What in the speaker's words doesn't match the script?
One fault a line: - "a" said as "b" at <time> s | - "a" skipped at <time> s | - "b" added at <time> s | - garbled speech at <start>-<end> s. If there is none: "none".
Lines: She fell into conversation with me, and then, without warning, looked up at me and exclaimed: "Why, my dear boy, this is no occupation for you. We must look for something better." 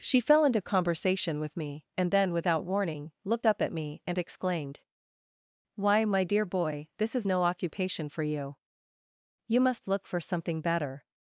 - "We" said as "You" at 9.5 s